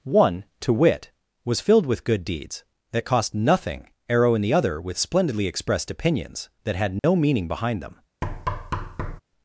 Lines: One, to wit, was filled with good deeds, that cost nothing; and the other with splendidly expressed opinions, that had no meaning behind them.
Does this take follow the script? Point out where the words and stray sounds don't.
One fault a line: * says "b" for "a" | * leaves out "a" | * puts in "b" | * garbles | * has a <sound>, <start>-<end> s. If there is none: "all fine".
* says "arrow in" for "and"
* has a dropout, 7.0-7.0 s
* has a thud, 8.2-9.2 s